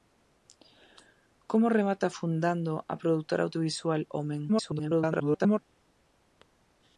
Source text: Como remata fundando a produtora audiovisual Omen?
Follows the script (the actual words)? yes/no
no